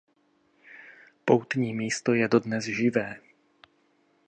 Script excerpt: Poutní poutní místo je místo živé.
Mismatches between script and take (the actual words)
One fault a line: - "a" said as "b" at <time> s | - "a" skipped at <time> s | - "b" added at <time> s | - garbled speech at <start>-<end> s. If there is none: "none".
- "poutní" skipped at 1.7 s
- "místo" said as "dodnes" at 2.3 s